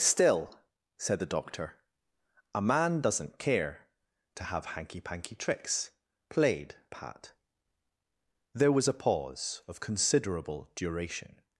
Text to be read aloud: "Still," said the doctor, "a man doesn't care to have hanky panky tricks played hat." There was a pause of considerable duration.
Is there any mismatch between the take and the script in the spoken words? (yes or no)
no